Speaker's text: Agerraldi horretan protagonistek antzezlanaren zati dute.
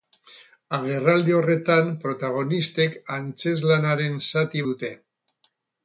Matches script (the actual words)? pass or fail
pass